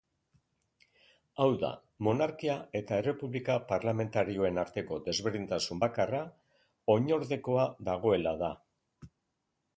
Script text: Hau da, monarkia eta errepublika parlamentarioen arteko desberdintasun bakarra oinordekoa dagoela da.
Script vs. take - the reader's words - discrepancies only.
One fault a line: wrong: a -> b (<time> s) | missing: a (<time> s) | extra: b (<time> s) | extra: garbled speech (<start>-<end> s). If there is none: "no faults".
no faults